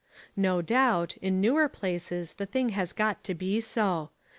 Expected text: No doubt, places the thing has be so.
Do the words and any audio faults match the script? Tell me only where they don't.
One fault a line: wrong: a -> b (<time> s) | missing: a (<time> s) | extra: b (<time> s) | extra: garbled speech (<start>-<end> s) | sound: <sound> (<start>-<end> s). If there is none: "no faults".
extra: in newer (1.2 s)
extra: got to (2.9 s)